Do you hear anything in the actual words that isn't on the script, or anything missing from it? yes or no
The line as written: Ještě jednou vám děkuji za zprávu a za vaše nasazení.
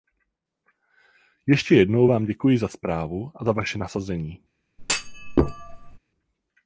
no